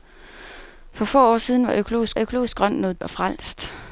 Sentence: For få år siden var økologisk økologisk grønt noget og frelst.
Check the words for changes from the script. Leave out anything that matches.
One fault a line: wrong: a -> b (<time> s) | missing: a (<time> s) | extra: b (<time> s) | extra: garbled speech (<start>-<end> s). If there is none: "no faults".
no faults